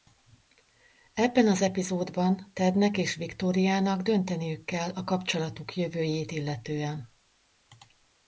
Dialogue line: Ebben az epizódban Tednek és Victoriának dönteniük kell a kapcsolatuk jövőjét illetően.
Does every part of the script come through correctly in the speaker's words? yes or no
yes